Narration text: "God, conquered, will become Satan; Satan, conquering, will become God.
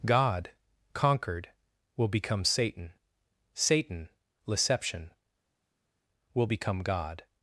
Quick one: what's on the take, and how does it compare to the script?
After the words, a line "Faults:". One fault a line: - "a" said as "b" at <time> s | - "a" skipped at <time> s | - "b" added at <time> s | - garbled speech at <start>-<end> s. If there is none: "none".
"God, conquered, will become Satan; Satan, leception, will become God.
Faults:
- "conquering" said as "leception" at 4.5 s